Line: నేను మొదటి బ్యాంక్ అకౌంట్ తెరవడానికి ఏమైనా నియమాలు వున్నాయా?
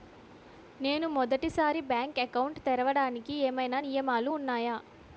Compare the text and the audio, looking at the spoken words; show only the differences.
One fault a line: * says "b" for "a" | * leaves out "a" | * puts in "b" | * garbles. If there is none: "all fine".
* puts in "సారి"